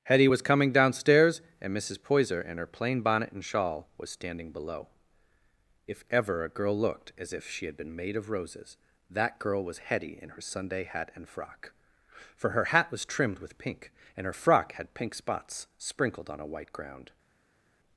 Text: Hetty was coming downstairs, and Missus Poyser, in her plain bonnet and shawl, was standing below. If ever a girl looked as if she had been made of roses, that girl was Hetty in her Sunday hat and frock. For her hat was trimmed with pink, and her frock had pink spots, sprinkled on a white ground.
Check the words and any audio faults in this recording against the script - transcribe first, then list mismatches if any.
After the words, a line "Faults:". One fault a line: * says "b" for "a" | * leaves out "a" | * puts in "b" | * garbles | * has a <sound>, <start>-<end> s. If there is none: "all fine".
Hetty was coming downstairs, and Missus Poyser, in her plain bonnet and shawl, was standing below. If ever a girl looked as if she had been made of roses, that girl was Hetty in her Sunday hat and frock. For her hat was trimmed with pink, and her frock had pink spots, sprinkled on a white ground.
Faults:
all fine